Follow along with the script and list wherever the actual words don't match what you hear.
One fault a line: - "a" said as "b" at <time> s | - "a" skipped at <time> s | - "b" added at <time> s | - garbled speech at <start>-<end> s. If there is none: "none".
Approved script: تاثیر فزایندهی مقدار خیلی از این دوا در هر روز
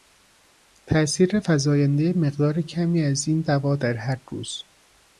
- "خیلی" said as "کمی" at 2.6 s